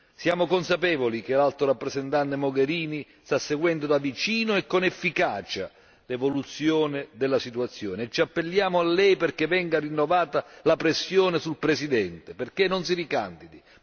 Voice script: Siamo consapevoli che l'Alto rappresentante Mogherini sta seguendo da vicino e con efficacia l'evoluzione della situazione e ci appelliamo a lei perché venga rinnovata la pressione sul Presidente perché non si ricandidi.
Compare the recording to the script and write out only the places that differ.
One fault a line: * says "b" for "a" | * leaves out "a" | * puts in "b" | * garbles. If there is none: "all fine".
all fine